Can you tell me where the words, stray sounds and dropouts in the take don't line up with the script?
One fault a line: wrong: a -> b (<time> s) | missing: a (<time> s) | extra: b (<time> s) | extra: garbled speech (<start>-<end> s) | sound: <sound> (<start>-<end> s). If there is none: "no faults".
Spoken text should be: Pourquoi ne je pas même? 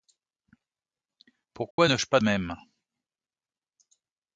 sound: dropout (1.7-1.8 s)